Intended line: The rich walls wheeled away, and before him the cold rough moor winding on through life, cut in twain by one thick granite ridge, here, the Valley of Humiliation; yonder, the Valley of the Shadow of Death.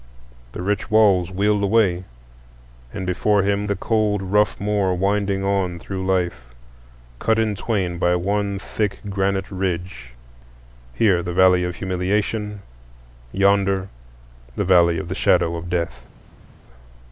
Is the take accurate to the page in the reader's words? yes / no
yes